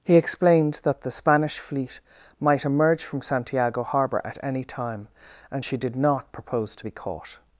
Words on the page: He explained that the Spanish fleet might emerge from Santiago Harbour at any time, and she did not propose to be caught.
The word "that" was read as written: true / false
true